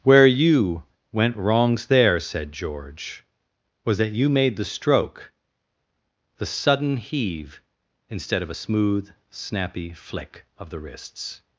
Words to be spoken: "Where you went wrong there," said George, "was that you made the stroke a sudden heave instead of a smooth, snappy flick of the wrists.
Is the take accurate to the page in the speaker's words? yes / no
no